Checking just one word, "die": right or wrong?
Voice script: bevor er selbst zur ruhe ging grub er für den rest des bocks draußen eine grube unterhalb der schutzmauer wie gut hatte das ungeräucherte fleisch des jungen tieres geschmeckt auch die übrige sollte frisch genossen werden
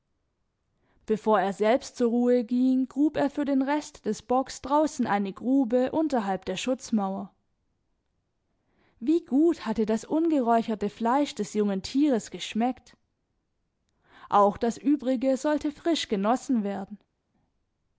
wrong